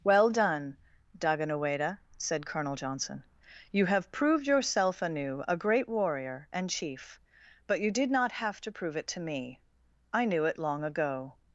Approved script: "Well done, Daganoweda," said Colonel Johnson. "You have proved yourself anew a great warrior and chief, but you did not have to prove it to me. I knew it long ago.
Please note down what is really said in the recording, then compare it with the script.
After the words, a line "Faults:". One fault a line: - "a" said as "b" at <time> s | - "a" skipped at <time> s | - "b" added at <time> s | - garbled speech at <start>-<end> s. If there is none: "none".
"Well done, Daganoweda," said Colonel Johnson. "You have proved yourself anew a great warrior and chief, but you did not have to prove it to me. I knew it long ago.
Faults:
none